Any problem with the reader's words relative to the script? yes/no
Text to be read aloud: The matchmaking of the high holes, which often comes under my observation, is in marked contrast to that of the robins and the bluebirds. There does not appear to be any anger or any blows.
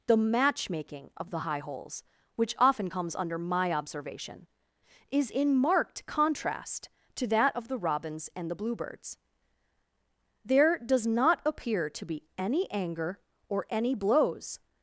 no